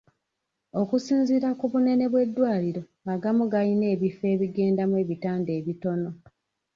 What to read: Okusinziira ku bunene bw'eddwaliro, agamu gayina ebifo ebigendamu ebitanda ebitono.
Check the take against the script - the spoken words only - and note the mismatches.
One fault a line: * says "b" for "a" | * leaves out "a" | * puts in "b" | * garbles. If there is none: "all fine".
all fine